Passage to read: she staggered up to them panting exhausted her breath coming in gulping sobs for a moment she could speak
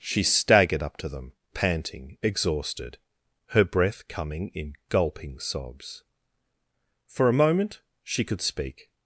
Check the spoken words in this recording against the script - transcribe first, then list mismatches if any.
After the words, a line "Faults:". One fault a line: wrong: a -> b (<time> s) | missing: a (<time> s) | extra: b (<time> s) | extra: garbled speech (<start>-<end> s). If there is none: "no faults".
she staggered up to them panting exhausted her breath coming in gulping sobs for a moment she could speak
Faults:
no faults